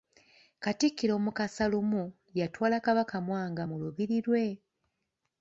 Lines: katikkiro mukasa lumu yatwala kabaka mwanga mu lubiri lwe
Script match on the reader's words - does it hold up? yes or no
yes